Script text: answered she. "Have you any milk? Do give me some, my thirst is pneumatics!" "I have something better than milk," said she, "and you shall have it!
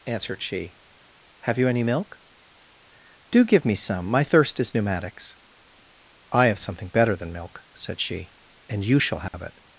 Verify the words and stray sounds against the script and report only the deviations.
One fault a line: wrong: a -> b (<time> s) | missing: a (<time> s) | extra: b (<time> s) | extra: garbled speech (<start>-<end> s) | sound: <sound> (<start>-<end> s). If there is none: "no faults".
sound: dropout (9.3-9.3 s)